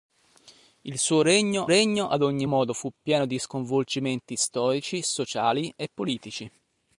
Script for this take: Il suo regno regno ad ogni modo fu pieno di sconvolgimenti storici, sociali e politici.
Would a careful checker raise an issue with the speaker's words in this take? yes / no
no